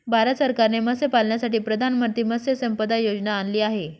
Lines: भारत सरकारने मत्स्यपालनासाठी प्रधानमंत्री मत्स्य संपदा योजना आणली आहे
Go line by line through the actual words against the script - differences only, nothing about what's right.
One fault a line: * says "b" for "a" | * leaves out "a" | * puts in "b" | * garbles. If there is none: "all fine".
all fine